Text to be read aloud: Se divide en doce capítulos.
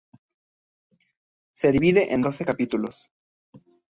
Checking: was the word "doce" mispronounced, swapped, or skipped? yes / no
no